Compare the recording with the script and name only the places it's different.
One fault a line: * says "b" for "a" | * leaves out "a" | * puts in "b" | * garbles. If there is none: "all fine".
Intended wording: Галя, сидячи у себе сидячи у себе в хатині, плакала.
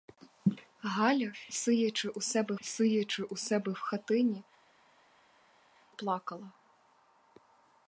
all fine